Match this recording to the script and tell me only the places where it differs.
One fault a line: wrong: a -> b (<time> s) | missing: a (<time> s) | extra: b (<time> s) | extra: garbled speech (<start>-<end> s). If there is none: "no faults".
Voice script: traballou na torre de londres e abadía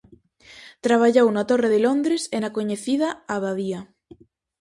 extra: na coñecida (2.4 s)